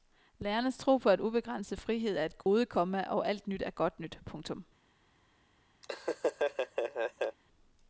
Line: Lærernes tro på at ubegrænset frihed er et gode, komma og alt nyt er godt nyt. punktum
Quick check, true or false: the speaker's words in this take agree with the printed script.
true